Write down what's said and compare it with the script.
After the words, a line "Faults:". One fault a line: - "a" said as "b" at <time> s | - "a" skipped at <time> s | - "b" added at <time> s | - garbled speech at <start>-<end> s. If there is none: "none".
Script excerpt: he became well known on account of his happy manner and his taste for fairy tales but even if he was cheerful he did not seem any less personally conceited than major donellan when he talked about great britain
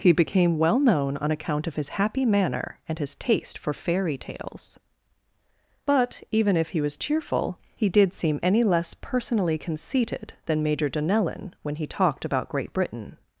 he became well known on account of his happy manner and his taste for fairy tales but even if he was cheerful he did seem any less personally conceited than major donellan when he talked about great britain
Faults:
- "not" skipped at 8.1 s